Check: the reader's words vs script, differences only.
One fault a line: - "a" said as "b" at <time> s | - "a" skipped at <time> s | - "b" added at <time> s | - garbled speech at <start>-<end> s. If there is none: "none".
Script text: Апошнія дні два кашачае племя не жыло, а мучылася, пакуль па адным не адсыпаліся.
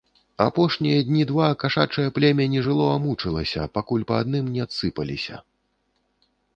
none